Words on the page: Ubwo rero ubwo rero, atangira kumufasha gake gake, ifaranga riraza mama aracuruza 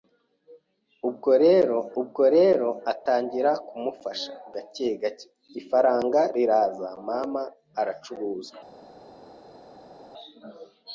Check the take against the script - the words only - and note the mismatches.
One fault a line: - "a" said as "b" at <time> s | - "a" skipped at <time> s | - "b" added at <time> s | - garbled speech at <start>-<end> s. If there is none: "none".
none